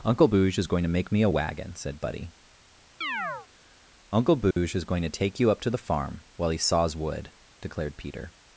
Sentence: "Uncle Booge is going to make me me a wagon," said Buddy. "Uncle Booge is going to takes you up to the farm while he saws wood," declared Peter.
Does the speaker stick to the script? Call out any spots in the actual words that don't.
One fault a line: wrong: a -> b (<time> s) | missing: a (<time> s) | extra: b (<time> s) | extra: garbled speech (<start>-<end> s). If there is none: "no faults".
missing: me (1.2 s)
wrong: takes -> take (5.1 s)